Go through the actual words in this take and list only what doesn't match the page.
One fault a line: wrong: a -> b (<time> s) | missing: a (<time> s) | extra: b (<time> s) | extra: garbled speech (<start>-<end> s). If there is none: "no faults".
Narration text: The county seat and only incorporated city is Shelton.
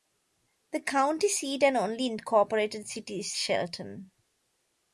no faults